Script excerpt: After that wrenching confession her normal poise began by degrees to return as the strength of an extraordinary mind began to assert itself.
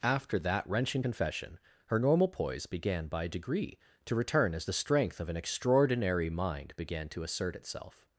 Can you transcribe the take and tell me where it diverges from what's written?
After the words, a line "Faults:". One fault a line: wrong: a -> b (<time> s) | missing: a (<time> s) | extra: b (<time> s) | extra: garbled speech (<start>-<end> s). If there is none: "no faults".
After that wrenching confession her normal poise began by degree to return as the strength of an extraordinary mind began to assert itself.
Faults:
wrong: degrees -> degree (3.3 s)